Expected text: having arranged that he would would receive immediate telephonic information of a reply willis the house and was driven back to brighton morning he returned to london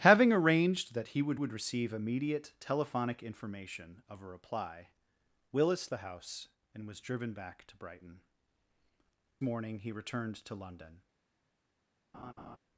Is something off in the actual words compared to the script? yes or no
no